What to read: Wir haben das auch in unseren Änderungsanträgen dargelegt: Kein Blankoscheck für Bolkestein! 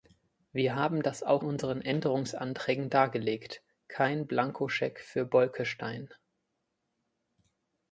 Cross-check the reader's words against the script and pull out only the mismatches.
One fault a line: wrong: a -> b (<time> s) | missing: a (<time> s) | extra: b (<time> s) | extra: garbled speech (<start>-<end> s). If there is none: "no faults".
missing: in (1.4 s)